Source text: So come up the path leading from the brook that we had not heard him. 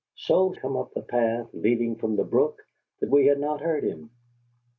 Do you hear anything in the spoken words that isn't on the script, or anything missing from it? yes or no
no